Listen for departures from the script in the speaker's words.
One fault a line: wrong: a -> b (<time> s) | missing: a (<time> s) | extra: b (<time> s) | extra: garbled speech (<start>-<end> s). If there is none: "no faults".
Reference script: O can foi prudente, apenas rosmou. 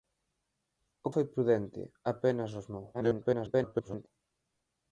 missing: can (1.1 s)
extra: garbled speech (2.9-4.1 s)